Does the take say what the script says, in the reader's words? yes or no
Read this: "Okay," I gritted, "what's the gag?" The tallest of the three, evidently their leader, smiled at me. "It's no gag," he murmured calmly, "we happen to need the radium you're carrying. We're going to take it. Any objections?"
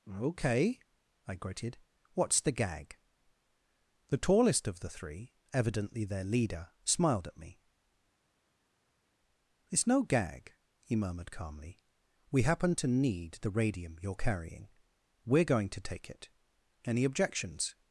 yes